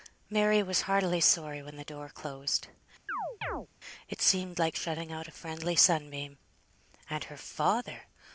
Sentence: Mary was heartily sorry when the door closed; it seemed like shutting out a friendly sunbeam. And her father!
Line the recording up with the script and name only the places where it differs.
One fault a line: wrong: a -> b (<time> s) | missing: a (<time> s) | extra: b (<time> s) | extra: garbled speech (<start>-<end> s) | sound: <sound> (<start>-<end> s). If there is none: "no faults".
sound: chirp (3.1-3.7 s)